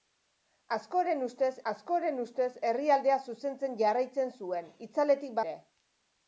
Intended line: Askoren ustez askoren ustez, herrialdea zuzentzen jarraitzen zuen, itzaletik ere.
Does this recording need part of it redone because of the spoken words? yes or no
no